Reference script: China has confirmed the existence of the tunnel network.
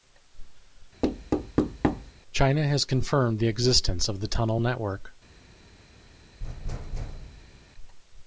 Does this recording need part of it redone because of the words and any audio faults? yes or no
yes